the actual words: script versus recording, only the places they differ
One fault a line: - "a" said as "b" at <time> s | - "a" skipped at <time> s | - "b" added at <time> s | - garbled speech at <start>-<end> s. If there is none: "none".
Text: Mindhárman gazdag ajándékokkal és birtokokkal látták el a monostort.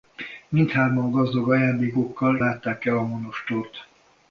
- "és birtokokkal" skipped at 2.4 s